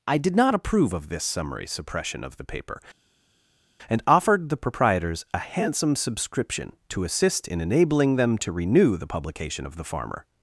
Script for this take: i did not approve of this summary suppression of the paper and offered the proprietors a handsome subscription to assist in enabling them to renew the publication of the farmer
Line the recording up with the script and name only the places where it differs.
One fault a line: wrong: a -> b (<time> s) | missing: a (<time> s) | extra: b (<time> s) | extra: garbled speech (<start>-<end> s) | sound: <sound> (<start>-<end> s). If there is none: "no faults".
no faults